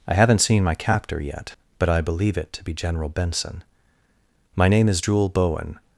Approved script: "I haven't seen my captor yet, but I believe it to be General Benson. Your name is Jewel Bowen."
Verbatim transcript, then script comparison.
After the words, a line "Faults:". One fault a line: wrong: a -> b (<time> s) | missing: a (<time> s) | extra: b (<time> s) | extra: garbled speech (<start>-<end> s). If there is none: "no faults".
"I haven't seen my captor yet, but I believe it to be General Benson. My name is Jewel Bowen."
Faults:
wrong: Your -> My (4.5 s)